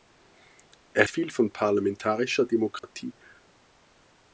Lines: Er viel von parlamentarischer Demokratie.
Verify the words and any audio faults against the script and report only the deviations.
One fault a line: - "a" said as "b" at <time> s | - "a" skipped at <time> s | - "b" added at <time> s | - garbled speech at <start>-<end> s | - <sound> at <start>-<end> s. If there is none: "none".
- dropout at 2.8-2.8 s